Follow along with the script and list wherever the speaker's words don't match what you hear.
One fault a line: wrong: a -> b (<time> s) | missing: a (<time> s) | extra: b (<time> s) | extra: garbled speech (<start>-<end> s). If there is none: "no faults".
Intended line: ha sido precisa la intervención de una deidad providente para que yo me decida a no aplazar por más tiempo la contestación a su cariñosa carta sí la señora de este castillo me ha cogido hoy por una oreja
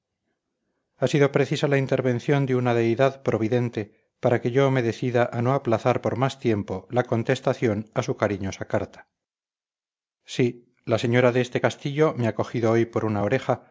no faults